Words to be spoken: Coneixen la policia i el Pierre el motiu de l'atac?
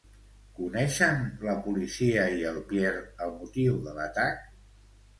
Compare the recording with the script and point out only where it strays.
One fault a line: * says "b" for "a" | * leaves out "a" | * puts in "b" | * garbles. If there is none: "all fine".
all fine